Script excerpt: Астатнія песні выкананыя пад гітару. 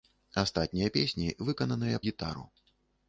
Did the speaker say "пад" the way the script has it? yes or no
no